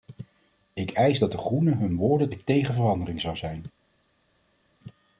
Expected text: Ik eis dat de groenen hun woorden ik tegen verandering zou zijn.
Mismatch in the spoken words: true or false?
false